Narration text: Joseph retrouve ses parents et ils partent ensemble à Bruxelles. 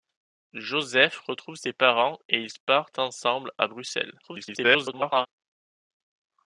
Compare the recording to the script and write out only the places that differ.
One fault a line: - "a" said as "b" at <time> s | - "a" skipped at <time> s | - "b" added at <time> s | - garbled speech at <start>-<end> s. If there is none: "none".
- garbled speech at 4.2-5.3 s